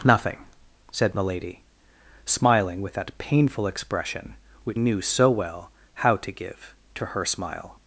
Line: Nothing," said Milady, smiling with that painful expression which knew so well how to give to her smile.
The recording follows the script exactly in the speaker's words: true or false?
true